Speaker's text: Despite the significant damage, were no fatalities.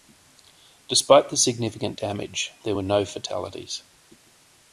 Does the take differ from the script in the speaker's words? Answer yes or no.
yes